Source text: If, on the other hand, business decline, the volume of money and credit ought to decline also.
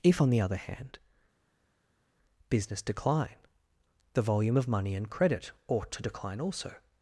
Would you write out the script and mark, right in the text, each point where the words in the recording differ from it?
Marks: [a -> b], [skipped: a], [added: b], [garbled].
If, on the other hand, business decline, the volume of money and credit ought to decline also.